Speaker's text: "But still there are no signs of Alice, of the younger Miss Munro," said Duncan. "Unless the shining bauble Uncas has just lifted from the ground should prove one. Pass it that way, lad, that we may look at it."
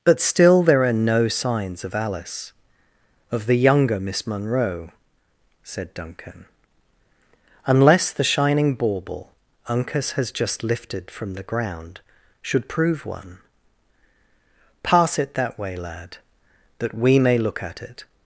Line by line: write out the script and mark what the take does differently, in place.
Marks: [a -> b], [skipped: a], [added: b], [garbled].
"But still there are no signs of Alice, of the younger Miss Munro," said Duncan. "Unless the shining bauble Uncas has just lifted from the ground should prove one. Pass it that way, lad, that we may look at it."